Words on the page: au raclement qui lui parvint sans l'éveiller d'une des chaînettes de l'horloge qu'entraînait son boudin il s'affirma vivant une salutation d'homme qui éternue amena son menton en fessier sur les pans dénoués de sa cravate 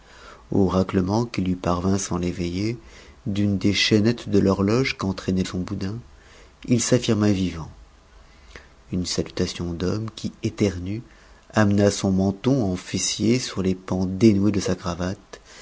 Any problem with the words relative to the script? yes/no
no